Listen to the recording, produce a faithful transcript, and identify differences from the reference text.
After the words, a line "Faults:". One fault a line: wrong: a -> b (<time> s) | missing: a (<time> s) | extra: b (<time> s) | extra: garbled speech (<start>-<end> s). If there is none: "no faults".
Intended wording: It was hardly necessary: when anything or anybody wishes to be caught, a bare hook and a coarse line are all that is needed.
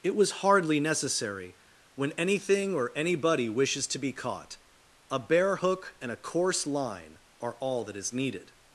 It was hardly necessary: when anything or anybody wishes to be caught, a bare hook and a coarse line are all that is needed.
Faults:
no faults